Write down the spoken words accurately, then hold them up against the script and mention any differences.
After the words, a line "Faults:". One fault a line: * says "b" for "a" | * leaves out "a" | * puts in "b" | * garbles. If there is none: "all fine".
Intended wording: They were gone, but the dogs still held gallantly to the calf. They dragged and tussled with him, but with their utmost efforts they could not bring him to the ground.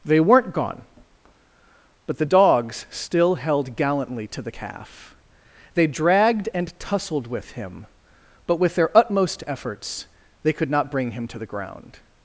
They weren't gone, but the dogs still held gallantly to the calf. They dragged and tussled with him, but with their utmost efforts they could not bring him to the ground.
Faults:
* says "weren't" for "were"